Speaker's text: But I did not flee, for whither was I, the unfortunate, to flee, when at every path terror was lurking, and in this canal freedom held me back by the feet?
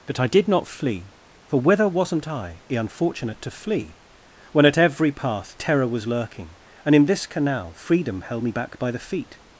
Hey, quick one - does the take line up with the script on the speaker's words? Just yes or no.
no